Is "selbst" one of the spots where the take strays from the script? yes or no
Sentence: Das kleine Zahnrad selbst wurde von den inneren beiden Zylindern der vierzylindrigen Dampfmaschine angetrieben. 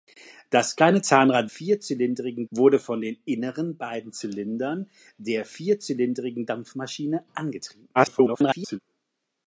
yes